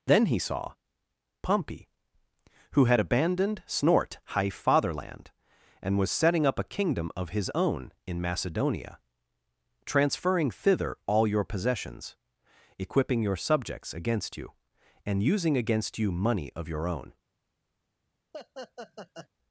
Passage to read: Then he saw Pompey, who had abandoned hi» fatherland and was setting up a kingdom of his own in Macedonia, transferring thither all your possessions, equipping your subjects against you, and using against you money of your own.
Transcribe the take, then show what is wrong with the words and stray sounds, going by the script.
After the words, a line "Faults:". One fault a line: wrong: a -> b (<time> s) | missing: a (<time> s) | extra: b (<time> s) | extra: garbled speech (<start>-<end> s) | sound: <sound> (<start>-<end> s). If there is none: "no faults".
Then he saw Pompey, who had abandoned snort high» fatherland and was setting up a kingdom of his own in Macedonia, transferring thither all your possessions, equipping your subjects against you, and using against you money of your own.
Faults:
wrong: hi -> snort high (3.7 s)
sound: laugh (18.3-19.3 s)